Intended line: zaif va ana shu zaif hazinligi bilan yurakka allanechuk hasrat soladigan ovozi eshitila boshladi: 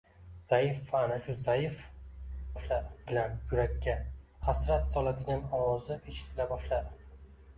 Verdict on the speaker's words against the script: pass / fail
fail